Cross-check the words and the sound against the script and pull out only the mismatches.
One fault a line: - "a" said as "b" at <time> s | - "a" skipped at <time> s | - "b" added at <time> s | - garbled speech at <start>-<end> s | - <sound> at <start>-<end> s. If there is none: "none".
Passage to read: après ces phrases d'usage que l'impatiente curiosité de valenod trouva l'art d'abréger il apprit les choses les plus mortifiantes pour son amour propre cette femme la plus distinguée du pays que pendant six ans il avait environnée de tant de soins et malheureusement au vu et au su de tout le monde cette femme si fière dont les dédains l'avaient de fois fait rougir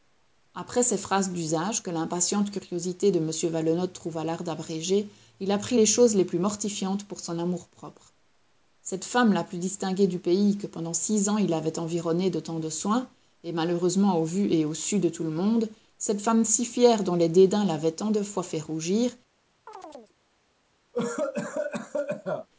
- "m" added at 3.2 s
- "tant" added at 17.9 s
- chirp at 19.7-20.1 s
- cough at 20.9-22.5 s